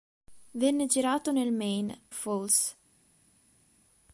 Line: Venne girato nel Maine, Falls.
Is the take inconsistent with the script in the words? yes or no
no